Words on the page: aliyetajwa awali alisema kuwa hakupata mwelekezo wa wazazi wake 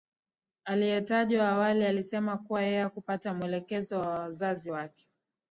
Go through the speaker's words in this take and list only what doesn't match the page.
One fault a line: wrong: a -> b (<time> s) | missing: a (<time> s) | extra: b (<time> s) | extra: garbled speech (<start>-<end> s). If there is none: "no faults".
extra: yeye (2.6 s)